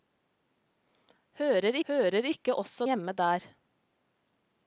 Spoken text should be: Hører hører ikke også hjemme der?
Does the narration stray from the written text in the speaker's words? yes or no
no